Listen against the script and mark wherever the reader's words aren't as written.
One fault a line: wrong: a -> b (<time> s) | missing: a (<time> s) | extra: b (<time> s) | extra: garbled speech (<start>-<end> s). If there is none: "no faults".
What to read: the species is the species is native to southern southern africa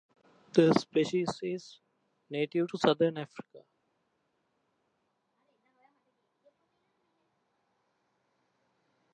missing: the species is (1.8 s)
missing: southern (3.2 s)